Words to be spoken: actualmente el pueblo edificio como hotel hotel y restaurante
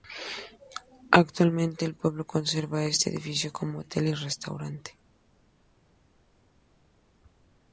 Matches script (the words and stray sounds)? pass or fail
fail